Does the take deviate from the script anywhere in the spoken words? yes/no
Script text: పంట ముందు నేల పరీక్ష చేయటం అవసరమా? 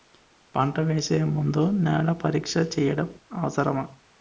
yes